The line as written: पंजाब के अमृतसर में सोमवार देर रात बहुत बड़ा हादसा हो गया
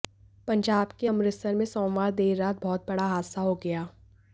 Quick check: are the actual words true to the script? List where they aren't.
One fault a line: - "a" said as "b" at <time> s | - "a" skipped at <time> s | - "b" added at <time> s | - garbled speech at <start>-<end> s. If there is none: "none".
none